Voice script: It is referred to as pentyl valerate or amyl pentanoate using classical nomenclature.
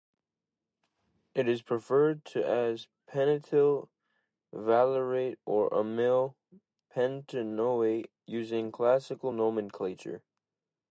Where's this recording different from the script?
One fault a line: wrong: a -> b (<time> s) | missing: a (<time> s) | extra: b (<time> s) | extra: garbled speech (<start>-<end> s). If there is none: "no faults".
no faults